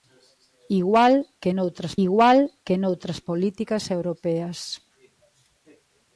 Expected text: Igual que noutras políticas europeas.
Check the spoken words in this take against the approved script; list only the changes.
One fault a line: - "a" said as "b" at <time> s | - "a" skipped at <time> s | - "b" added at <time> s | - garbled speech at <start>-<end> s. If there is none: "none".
- "igual que noutras" added at 2.1 s